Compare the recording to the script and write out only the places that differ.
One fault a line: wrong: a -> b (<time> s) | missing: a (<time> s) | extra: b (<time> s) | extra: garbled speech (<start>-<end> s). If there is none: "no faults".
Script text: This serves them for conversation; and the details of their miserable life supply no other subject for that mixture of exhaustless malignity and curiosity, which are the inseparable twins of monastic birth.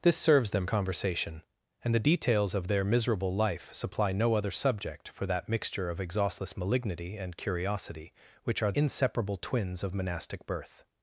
missing: for (0.7 s)
missing: the (8.7 s)